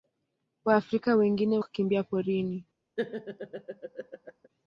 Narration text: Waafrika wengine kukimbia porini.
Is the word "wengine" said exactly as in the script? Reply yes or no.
yes